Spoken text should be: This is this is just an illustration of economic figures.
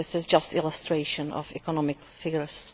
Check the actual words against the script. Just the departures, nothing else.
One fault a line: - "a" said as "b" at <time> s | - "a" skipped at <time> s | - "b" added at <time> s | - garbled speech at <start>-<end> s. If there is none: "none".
- "this is" skipped at 0.2 s